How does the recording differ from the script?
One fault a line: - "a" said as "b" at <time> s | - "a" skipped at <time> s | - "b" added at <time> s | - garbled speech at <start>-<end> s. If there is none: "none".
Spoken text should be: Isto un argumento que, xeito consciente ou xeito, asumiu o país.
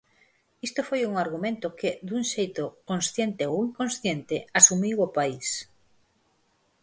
- "foi" added at 0.9 s
- "dun" added at 2.1 s
- "xeito" said as "inconsciente" at 3.7 s